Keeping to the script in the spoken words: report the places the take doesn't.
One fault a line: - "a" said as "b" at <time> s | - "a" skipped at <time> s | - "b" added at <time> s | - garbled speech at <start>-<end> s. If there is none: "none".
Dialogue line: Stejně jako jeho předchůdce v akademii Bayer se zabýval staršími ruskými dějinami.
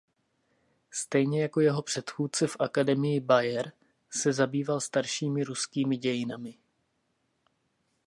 none